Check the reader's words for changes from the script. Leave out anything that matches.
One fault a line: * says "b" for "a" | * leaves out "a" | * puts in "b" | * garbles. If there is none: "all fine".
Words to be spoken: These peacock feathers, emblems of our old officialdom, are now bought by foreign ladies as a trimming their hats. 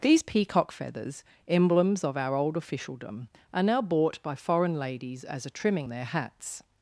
all fine